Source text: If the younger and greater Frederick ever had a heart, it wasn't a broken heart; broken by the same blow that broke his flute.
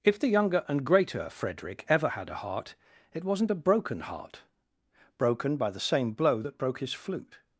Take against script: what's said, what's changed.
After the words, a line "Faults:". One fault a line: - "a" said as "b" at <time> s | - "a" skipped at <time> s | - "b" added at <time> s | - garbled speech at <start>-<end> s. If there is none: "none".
If the younger and greater Frederick ever had a heart, it wasn't a broken heart; broken by the same blow that broke his flute.
Faults:
none